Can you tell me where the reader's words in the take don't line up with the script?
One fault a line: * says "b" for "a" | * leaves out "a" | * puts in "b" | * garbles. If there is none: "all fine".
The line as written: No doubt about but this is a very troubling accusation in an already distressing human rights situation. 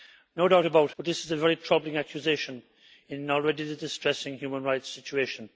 all fine